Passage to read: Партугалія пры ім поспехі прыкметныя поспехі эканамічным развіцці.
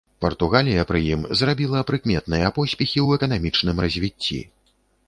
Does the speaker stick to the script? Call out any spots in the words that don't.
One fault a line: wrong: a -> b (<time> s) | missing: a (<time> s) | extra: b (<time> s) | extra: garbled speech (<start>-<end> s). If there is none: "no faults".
wrong: поспехі -> зрабіла (1.4 s)
extra: ў (3.0 s)